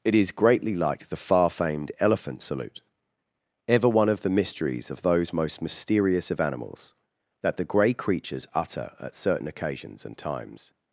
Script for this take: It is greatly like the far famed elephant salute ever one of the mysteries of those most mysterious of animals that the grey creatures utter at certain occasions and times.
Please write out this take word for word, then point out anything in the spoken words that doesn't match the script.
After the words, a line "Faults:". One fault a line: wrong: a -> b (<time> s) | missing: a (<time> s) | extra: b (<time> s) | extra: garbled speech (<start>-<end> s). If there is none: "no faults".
It is greatly like the far famed elephant salute ever one of the mysteries of those most mysterious of animals that the grey creatures utter at certain occasions and times.
Faults:
no faults